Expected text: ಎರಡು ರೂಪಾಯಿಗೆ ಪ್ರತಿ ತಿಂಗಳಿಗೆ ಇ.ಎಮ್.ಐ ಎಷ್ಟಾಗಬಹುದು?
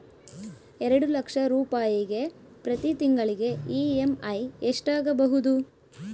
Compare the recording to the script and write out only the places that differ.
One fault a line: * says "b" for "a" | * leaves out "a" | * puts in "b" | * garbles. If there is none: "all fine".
* puts in "ಲಕ್ಷ"